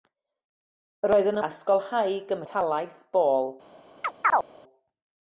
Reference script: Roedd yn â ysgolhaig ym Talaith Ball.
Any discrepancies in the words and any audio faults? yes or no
yes